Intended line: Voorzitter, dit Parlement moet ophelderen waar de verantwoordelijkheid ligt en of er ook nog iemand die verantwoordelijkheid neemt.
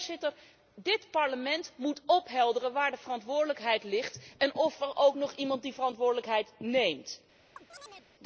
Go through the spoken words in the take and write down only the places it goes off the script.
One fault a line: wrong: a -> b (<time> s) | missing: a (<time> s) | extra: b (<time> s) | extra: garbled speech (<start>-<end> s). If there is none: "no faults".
no faults